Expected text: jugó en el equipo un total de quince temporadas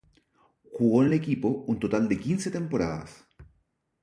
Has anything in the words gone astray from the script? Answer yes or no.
no